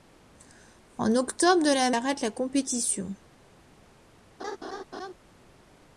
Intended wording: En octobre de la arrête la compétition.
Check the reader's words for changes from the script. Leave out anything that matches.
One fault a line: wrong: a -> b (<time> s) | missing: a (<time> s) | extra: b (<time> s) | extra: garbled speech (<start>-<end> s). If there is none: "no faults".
no faults